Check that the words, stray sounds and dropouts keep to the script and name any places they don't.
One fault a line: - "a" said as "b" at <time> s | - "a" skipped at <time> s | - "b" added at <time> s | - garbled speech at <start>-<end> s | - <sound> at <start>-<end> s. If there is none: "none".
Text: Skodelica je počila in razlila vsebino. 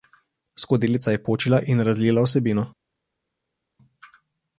none